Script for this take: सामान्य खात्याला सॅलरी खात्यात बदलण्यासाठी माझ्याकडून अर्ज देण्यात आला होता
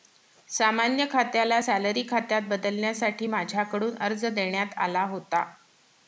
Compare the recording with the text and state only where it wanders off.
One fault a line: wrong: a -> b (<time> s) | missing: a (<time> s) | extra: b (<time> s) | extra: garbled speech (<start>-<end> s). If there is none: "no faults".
no faults